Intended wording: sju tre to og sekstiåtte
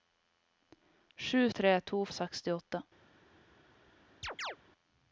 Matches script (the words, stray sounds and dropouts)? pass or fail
fail